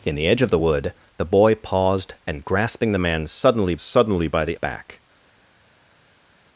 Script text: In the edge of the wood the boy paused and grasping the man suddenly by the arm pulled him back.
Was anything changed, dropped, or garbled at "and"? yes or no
no